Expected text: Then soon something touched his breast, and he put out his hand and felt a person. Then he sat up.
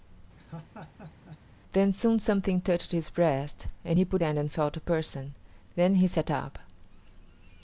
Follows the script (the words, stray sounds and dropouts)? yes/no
no